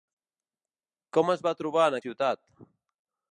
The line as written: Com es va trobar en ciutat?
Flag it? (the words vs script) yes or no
no